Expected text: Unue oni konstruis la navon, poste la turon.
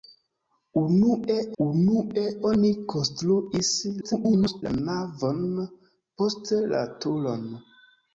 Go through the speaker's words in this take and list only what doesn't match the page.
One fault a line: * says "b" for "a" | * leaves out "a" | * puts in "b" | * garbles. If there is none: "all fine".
* puts in "unue"
* garbles